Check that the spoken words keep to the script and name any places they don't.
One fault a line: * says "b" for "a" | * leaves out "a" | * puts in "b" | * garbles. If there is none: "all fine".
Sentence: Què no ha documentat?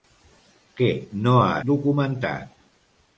all fine